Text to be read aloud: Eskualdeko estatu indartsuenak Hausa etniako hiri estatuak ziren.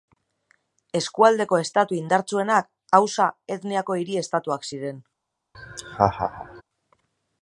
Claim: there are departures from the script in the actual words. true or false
false